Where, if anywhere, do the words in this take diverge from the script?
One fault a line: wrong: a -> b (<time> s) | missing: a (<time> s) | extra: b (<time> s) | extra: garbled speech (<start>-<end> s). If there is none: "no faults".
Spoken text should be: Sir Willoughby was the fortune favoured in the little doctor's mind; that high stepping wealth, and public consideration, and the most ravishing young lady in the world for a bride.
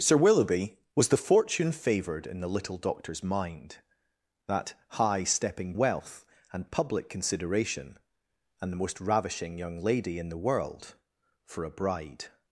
no faults